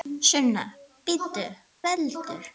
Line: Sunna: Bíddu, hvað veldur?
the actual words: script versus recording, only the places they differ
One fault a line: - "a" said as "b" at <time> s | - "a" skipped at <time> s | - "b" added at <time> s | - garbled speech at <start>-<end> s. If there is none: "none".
- "hvað" skipped at 1.5 s